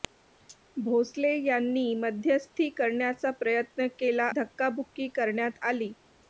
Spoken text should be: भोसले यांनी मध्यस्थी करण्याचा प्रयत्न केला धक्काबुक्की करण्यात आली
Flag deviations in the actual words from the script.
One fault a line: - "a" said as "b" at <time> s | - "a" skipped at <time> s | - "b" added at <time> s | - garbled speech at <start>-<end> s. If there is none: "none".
none